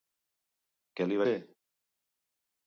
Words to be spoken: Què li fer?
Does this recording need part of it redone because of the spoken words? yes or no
no